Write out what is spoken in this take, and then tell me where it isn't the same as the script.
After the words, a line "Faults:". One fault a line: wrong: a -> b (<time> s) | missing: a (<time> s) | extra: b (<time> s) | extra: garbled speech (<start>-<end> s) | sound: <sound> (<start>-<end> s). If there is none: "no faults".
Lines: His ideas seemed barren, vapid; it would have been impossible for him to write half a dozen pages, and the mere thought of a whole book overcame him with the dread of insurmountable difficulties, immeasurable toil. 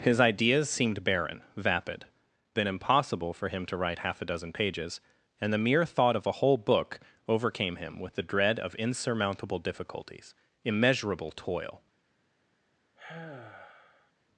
His ideas seemed barren, vapid; been impossible for him to write half a dozen pages, and the mere thought of a whole book overcame him with the dread of insurmountable difficulties, immeasurable toil.
Faults:
missing: it would have (2.0 s)
sound: sigh (13.0-14.1 s)